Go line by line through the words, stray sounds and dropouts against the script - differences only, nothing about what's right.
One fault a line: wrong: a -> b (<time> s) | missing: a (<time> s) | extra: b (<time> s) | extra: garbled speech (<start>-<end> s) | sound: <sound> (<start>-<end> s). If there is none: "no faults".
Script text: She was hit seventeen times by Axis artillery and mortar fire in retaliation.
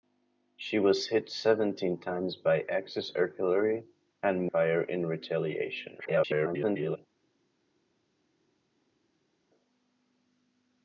missing: mortar (4.5 s)
extra: garbled speech (6.0-7.0 s)